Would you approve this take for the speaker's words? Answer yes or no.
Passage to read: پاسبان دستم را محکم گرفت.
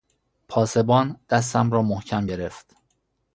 yes